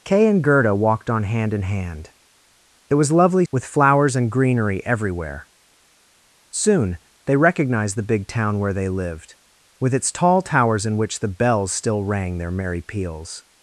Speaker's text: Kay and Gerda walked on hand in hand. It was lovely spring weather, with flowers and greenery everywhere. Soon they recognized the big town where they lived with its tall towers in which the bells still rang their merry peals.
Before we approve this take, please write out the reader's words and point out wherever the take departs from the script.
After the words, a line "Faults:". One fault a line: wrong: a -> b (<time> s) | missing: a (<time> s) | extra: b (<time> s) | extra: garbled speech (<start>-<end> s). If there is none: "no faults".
Kay and Gerda walked on hand in hand. It was lovely with flowers and greenery everywhere. Soon they recognized the big town where they lived with its tall towers in which the bells still rang their merry peals.
Faults:
missing: spring weather (3.5 s)